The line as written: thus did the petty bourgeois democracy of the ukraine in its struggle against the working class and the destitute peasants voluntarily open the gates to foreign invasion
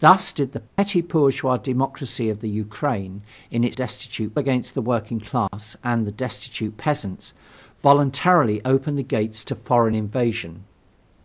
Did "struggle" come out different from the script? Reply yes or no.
yes